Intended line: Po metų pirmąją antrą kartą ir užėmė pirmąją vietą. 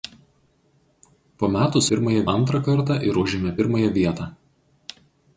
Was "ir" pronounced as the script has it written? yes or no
yes